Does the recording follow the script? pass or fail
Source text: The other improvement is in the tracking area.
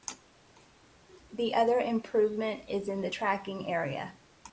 pass